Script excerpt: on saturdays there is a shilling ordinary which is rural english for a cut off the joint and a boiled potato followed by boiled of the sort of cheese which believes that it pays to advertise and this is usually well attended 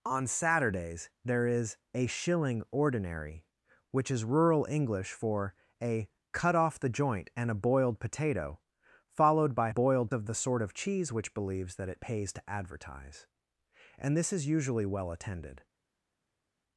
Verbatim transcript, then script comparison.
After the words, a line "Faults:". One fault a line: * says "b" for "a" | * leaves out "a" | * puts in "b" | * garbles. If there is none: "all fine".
on saturdays there is a shilling ordinary which is rural english for a cut off the joint and a boiled potato followed by boiled of the sort of cheese which believes that it pays to advertise and this is usually well attended
Faults:
all fine